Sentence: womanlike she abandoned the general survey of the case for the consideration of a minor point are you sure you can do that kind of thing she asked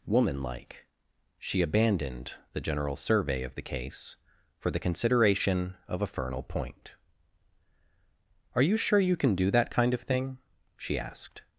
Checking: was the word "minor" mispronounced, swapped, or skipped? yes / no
yes